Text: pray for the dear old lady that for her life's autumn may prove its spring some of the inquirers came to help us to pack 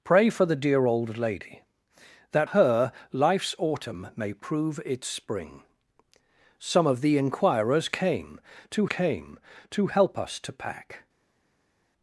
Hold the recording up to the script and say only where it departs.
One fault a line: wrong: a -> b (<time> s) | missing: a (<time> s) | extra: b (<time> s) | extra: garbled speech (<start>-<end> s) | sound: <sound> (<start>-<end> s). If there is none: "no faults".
missing: for (2.5 s)
extra: came to (8.8 s)